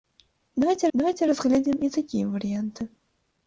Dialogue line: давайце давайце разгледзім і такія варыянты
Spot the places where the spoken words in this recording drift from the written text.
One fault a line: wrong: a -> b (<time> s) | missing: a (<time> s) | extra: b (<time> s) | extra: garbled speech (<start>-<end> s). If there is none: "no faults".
no faults